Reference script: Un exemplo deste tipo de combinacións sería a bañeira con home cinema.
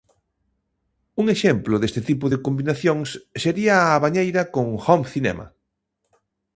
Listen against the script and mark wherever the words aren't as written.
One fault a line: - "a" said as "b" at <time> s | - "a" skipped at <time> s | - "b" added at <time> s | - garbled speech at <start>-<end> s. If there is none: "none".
none